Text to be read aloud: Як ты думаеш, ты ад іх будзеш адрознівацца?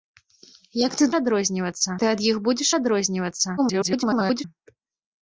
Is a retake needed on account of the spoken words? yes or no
yes